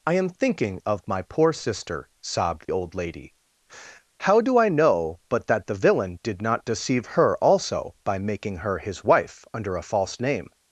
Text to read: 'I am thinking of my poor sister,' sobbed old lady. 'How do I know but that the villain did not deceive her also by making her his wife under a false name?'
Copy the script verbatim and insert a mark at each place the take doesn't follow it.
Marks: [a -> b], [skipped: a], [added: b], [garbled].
'I am thinking of my poor sister,' sobbed old lady. 'How do I know but that the villain did not deceive her also by making her his wife under a false name?'